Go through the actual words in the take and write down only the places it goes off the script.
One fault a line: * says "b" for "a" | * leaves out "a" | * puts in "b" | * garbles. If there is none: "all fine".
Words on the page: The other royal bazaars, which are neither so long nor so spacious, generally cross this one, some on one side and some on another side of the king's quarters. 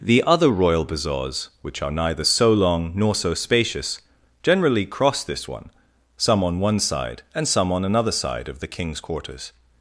all fine